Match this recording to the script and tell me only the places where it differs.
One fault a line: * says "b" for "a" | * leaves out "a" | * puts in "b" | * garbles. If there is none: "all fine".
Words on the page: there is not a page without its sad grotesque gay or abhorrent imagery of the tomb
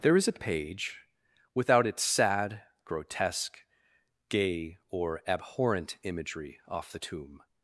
* leaves out "not"
* says "off" for "of"